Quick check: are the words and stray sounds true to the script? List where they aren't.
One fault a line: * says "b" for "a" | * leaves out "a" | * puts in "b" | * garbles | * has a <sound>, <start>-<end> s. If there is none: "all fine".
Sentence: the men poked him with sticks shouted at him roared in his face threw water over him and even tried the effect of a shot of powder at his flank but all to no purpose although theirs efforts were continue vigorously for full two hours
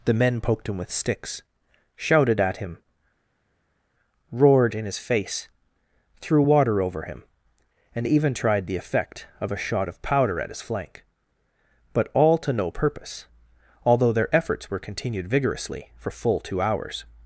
* says "their" for "theirs"
* says "continued" for "continue"